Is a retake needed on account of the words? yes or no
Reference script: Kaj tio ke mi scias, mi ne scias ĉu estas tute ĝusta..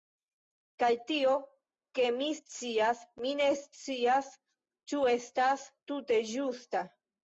no